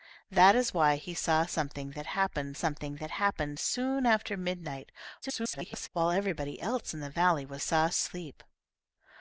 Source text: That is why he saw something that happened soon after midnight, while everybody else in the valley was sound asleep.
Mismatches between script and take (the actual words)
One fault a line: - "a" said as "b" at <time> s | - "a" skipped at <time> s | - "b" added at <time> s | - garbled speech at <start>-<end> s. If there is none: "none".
- "something that happened" added at 2.5 s
- garbled speech at 5.2-5.9 s
- "sound" said as "saw" at 7.6 s